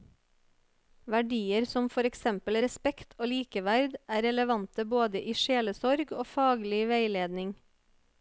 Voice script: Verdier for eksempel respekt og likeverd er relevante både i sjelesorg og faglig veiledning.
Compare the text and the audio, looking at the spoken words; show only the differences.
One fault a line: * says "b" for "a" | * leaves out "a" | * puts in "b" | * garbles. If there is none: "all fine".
* puts in "som"